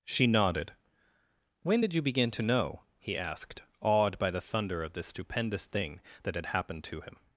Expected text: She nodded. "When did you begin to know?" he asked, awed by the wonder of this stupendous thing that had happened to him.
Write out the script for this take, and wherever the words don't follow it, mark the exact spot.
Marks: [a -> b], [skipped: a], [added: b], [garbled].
She nodded. "When did you begin to know?" he asked, awed by the [wonder -> thunder] of this stupendous thing that had happened to him.